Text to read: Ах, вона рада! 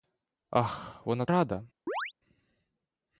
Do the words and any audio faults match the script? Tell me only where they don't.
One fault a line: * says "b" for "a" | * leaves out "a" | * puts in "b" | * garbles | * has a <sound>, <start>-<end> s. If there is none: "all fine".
* has a chirp, 1.9-2.1 s